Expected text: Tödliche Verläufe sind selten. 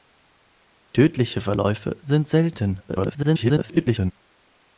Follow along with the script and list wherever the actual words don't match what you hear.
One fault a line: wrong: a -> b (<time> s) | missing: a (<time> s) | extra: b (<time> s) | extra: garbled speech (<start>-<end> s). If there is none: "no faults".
extra: garbled speech (2.9-4.1 s)